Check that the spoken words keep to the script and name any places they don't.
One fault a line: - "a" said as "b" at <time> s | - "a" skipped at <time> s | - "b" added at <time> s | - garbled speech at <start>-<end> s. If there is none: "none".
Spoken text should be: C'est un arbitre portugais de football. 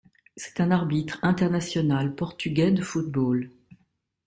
- "international" added at 1.2 s